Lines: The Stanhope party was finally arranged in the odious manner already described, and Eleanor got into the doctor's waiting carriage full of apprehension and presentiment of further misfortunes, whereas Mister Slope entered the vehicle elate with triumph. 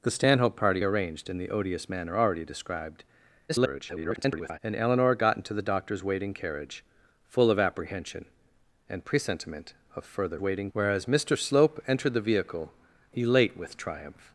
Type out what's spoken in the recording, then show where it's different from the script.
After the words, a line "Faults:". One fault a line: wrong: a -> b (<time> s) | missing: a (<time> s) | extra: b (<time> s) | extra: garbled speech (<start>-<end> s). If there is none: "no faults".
The Stanhope party arranged in the odious manner already described, [garbled] and Eleanor got into the doctor's waiting carriage full of apprehension and presentiment of further waiting, whereas Mister Slope entered the vehicle elate with triumph.
Faults:
missing: was finally (0.8 s)
extra: garbled speech (3.5-4.6 s)
wrong: misfortunes -> waiting (10.4 s)